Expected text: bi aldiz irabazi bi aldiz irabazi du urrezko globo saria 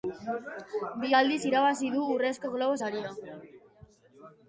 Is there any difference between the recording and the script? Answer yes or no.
yes